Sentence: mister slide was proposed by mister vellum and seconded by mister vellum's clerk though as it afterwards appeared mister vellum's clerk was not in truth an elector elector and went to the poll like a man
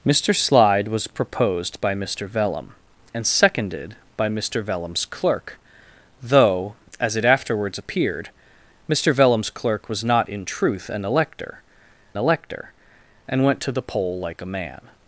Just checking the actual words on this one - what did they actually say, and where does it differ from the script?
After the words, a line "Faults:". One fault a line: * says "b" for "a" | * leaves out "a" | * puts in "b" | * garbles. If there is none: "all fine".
mister slide was proposed by mister vellum and seconded by mister vellum's clerk though as it afterwards appeared mister vellum's clerk was not in truth an elector elector and went to the poll like a man
Faults:
all fine